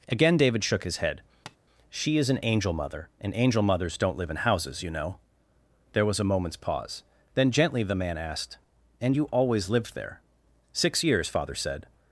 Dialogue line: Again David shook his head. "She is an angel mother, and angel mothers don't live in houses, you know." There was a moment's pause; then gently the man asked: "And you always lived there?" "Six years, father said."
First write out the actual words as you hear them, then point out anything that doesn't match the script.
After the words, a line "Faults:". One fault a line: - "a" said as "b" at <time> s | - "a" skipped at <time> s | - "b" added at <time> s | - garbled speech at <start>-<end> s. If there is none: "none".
Again David shook his head. "She is an angel mother, and angel mothers don't live in houses, you know." There was a moment's pause; then gently the man asked: "And you always lived there?" "Six years, father said."
Faults:
none